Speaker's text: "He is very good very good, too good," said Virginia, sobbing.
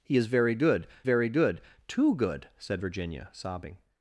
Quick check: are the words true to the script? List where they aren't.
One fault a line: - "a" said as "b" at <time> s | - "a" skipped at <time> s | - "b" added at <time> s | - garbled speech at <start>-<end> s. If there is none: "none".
none